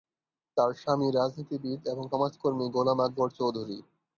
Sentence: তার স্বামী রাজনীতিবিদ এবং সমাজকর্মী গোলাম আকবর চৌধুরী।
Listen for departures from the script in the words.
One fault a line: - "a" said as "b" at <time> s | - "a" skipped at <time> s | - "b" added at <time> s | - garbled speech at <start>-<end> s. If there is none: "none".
none